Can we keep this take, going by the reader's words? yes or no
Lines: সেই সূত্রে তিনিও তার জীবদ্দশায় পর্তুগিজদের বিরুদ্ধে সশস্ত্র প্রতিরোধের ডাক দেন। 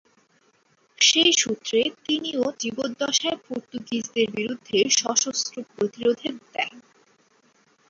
no